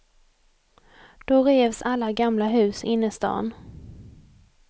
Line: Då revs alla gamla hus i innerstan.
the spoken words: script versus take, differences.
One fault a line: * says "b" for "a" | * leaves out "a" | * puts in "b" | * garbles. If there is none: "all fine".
all fine